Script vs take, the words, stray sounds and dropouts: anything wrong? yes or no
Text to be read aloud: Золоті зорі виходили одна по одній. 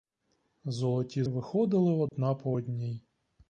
yes